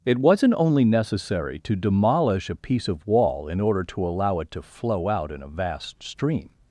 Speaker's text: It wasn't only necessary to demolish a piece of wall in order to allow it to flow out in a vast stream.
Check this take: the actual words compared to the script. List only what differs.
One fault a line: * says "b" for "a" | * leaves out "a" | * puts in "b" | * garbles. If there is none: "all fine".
all fine